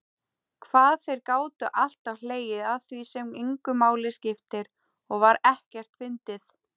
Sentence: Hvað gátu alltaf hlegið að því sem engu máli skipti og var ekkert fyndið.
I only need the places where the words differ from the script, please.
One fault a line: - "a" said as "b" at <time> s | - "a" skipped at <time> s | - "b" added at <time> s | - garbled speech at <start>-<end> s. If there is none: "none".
- "þeir" added at 1.1 s